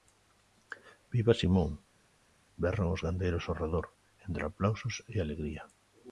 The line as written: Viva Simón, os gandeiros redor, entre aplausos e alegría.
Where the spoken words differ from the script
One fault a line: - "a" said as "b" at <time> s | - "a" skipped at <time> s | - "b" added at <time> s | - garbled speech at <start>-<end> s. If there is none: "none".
- "berran" added at 2.6 s
- "ao" added at 3.5 s